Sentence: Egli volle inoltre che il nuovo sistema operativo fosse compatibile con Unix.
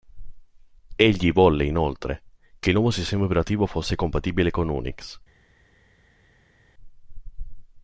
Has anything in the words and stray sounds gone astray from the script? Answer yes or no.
no